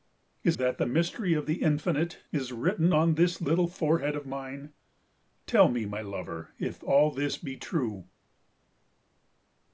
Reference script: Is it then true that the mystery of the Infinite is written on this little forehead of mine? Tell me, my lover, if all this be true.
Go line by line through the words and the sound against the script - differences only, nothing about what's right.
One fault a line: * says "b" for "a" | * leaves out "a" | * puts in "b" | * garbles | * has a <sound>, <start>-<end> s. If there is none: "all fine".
* leaves out "it then true"